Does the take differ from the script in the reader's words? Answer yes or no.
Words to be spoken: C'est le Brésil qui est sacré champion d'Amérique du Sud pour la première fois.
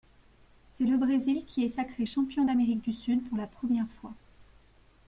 no